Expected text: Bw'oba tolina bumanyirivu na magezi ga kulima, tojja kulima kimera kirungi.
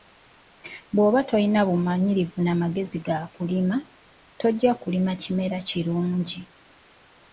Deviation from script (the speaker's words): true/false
false